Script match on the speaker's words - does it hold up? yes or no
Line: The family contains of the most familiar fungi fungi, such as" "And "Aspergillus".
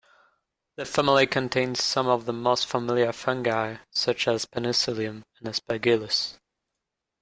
no